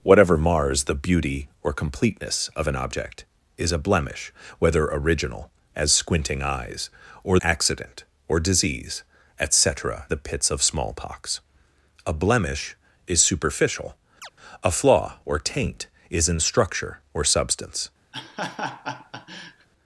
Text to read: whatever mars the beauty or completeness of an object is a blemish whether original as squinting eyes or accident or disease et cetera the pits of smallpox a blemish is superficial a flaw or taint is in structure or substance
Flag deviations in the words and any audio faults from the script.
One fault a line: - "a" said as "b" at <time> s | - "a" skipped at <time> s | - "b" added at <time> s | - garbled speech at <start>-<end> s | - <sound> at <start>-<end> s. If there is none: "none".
- chirp at 14.2-14.3 s
- laugh at 18.1-19.7 s